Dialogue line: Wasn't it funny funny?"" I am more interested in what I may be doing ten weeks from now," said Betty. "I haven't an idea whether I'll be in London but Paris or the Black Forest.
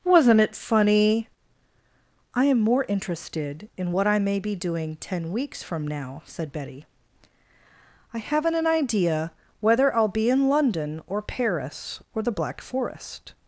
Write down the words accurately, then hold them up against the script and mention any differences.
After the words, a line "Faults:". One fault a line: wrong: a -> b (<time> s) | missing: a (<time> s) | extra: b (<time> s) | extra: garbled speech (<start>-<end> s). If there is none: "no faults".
Wasn't it funny?"" I am more interested in what I may be doing ten weeks from now," said Betty. "I haven't an idea whether I'll be in London or Paris or the Black Forest.
Faults:
missing: funny (1.3 s)
wrong: but -> or (11.1 s)